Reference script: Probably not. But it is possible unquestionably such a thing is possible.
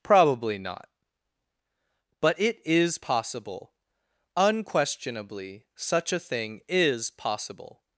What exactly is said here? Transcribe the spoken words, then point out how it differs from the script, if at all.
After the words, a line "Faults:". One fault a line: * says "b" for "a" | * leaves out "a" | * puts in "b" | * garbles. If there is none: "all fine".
Probably not. But it is possible unquestionably such a thing is possible.
Faults:
all fine